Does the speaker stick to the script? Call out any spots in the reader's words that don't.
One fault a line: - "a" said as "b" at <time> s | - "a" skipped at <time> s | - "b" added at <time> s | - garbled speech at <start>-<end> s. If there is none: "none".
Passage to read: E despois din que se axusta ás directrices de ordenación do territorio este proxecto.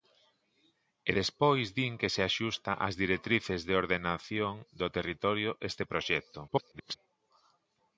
- garbled speech at 6.5-7.0 s